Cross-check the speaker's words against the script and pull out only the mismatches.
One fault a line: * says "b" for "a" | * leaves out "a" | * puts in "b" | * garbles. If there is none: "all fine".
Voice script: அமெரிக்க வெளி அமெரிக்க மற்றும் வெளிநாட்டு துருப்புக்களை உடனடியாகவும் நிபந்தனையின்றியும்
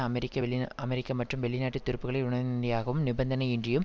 all fine